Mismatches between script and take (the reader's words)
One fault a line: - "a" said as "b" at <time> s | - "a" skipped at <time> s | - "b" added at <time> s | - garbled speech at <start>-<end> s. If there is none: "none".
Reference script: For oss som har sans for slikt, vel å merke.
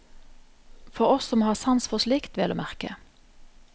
none